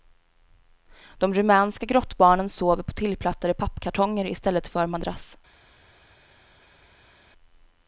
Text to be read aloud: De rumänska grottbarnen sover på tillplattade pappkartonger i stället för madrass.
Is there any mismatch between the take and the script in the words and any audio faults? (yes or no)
no